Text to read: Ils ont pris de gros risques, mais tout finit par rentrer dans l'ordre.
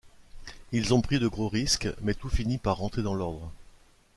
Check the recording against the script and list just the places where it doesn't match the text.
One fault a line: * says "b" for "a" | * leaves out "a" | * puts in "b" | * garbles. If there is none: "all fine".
all fine